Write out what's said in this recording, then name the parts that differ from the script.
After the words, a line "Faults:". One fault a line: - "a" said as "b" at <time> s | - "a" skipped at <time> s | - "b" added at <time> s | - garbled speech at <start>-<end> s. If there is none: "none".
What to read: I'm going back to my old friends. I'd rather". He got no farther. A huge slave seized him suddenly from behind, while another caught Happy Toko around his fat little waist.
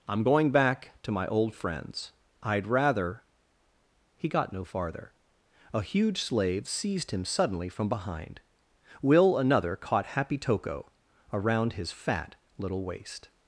I'm going back to my old friends. I'd rather". He got no farther. A huge slave seized him suddenly from behind, will another caught Happy Toko around his fat little waist.
Faults:
- "while" said as "will" at 9.0 s